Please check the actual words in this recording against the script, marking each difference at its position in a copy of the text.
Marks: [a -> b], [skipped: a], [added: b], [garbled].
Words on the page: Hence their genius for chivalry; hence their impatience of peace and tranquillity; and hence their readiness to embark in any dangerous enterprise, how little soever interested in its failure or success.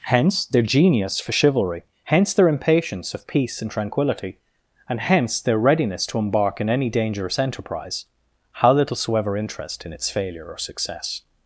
Hence their genius for chivalry; hence their impatience of peace and tranquillity; and hence their readiness to embark in any dangerous enterprise, how little soever [interested -> interest] in its failure or success.